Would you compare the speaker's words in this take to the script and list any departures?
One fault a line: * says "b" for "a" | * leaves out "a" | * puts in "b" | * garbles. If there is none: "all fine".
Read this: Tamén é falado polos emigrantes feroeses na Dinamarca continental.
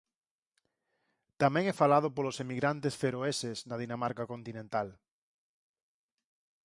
all fine